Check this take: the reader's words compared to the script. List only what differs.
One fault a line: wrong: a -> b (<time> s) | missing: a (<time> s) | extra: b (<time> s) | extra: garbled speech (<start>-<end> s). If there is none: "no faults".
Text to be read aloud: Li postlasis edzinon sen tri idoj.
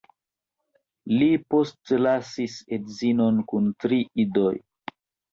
wrong: sen -> kun (3.5 s)